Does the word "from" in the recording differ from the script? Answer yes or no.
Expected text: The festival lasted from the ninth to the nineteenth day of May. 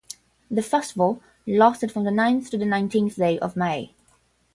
no